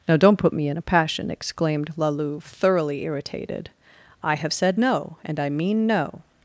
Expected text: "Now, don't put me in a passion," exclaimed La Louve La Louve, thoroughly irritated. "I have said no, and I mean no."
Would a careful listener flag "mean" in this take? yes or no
no